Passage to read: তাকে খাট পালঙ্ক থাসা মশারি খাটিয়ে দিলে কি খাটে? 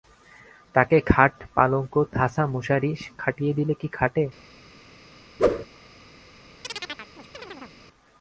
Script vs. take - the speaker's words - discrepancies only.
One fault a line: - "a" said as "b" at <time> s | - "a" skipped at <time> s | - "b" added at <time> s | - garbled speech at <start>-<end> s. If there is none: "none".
none